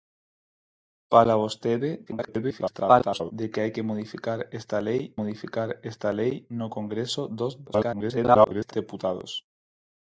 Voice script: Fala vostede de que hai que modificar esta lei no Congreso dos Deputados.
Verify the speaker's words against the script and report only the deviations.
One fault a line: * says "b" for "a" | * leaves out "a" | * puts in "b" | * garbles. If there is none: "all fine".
* garbles
* puts in "modificar esta lei"
* garbles